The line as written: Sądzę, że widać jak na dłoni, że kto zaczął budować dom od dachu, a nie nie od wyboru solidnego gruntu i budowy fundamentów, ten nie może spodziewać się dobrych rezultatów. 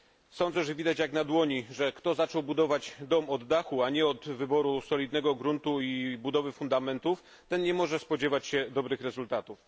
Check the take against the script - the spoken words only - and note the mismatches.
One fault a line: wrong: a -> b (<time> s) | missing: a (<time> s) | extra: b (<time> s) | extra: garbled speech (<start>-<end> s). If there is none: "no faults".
missing: nie (4.0 s)